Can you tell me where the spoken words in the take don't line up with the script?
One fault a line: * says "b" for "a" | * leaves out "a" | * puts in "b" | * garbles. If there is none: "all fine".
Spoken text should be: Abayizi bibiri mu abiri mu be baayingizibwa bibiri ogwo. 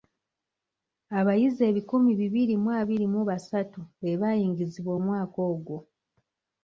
* puts in "ebikumi"
* puts in "basatu"
* says "omwaka" for "bibiri"